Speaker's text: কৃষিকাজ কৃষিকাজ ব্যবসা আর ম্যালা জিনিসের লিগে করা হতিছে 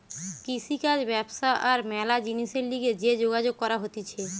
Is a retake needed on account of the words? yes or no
yes